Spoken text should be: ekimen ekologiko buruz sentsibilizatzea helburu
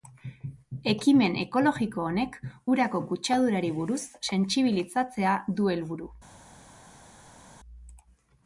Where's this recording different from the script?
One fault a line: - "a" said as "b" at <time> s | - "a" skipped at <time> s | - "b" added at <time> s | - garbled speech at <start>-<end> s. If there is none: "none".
- "honek urako kutsadurari" added at 2.1 s
- "du" added at 5.6 s